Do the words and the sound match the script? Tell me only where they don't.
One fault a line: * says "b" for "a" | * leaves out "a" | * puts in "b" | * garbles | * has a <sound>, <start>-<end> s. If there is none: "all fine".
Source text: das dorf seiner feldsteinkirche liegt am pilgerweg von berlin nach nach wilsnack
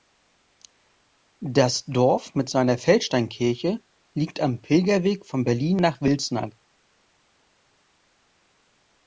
* puts in "mit"
* leaves out "nach"